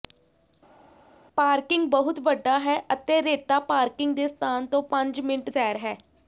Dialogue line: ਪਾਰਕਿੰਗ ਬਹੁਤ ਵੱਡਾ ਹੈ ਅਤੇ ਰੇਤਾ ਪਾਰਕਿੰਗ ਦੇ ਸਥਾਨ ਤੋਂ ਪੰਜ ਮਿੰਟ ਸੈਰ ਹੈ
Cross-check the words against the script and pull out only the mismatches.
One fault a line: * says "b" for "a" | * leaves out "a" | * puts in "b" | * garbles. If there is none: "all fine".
all fine